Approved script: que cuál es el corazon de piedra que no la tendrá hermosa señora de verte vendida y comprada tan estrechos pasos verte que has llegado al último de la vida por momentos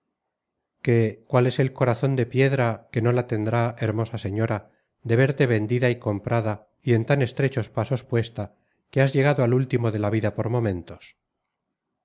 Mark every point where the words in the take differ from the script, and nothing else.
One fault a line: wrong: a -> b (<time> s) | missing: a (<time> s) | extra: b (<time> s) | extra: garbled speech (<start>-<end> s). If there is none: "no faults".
extra: y en (6.8 s)
wrong: verte -> puesta (8.0 s)